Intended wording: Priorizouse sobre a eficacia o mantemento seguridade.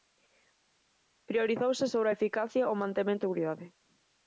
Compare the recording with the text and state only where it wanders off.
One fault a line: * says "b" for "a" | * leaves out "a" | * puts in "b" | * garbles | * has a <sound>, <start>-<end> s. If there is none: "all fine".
all fine